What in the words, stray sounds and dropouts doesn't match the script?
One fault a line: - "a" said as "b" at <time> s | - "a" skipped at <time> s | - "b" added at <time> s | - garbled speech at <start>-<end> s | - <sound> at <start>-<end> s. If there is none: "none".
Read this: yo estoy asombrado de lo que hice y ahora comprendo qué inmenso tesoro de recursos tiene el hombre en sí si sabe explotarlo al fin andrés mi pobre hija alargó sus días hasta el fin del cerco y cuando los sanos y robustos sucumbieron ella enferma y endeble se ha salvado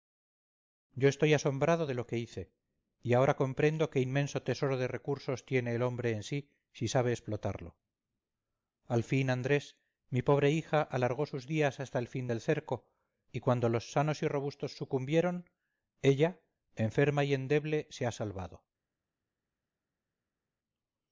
none